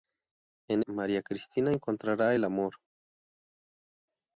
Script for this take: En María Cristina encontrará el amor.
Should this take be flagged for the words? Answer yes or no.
no